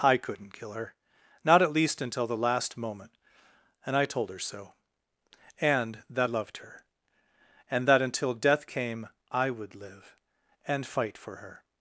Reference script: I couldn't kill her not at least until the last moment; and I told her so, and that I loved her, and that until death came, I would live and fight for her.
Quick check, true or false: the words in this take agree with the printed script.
false